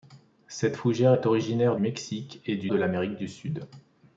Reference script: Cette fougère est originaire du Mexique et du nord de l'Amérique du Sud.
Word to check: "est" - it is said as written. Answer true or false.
true